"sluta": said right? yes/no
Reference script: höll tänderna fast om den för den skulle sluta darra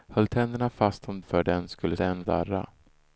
no